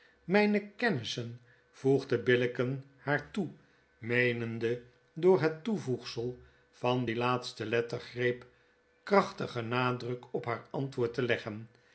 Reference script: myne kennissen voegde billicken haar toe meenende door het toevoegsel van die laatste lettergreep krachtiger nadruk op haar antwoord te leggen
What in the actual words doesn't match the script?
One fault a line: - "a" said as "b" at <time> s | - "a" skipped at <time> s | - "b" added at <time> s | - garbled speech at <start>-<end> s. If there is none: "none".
none